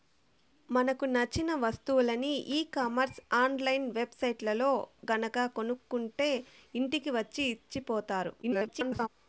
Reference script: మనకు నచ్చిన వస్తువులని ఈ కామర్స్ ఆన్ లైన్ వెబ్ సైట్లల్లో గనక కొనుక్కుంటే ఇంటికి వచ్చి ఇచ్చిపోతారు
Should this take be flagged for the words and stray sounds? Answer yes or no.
yes